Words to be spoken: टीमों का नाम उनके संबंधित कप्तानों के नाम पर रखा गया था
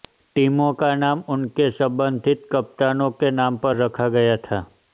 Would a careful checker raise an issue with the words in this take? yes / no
no